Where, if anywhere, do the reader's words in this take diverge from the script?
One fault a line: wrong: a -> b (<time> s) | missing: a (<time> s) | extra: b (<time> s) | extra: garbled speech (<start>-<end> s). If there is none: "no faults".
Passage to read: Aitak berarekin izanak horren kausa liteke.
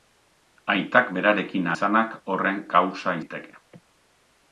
no faults